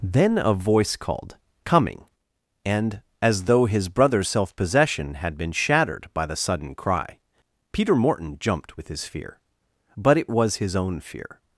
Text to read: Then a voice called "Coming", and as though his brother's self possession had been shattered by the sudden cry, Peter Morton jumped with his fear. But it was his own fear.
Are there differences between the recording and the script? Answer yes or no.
no